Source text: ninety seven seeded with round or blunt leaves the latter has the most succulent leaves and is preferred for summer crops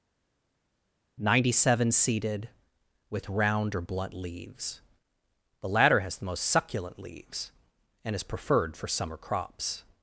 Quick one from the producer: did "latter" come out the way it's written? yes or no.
yes